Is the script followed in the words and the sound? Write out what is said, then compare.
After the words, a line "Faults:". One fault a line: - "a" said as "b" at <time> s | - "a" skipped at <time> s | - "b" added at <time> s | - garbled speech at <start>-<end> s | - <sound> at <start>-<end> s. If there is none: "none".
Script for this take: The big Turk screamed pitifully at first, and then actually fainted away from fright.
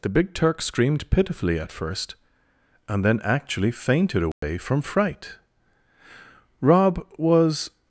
The big Turk screamed pitifully at first, and then actually fainted away from fright. Rob was
Faults:
- dropout at 4.3-4.4 s
- "Rob was" added at 6.6 s